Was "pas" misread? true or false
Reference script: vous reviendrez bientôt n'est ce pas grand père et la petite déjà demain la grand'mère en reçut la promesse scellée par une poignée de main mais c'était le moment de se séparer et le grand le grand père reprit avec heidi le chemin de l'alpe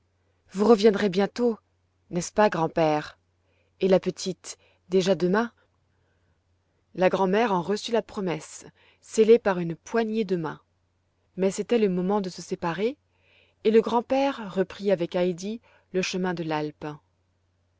false